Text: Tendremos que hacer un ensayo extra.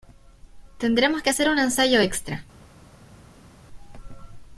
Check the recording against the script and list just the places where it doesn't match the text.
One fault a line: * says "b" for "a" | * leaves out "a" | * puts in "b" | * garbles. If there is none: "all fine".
all fine